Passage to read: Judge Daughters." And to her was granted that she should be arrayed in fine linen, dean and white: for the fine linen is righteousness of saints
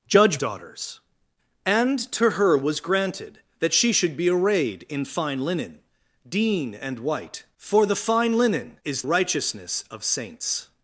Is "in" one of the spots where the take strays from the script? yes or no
no